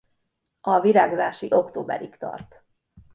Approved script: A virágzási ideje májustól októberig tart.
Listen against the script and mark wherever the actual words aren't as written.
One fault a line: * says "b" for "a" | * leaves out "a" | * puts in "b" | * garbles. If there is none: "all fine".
* leaves out "ideje májustól"